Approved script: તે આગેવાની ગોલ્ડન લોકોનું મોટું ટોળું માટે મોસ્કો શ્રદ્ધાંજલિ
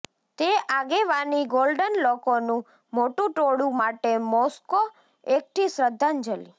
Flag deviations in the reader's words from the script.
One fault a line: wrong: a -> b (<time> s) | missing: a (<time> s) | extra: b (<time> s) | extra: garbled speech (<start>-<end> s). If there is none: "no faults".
extra: એકઠી (5.2 s)